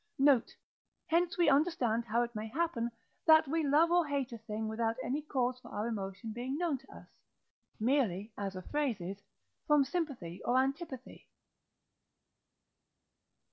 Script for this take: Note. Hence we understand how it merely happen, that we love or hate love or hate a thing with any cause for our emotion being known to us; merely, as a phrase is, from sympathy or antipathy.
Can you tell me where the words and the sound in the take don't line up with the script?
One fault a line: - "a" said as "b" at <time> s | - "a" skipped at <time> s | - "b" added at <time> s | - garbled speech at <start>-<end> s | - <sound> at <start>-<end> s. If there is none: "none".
- "merely" said as "may" at 2.3 s
- "love or hate" skipped at 4.3 s
- "with" said as "without" at 4.7 s